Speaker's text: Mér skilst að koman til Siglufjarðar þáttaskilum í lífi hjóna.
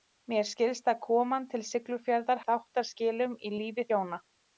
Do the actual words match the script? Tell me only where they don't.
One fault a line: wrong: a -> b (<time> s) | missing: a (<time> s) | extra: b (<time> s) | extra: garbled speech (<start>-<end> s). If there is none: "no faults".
no faults